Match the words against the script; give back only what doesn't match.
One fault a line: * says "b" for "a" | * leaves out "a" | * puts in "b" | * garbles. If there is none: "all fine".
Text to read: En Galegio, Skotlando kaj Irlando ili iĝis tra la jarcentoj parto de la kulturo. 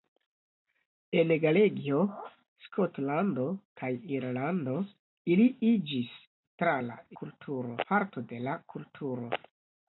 * says "kulturo" for "jarcentoj"